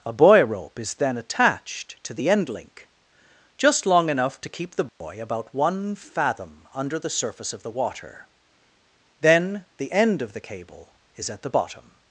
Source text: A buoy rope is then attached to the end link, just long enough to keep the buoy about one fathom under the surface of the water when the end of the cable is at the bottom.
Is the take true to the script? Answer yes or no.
no